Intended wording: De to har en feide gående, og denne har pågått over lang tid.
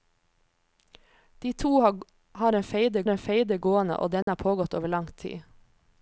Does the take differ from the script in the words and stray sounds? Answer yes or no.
yes